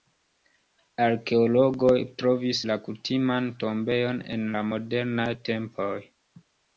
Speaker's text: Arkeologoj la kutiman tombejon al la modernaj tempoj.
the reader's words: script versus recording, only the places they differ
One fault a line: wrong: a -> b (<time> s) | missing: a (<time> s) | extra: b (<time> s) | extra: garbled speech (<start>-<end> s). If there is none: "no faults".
extra: trovis (2.2 s)
wrong: al -> en (4.4 s)